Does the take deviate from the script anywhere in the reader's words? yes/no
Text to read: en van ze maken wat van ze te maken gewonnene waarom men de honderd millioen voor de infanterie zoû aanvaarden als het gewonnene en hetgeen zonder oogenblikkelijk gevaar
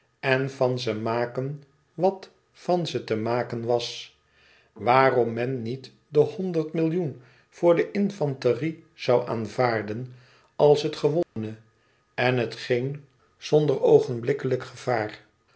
yes